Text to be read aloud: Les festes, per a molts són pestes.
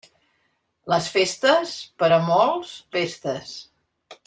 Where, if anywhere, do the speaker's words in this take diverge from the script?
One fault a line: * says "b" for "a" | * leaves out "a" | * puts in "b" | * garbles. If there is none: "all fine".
* leaves out "són"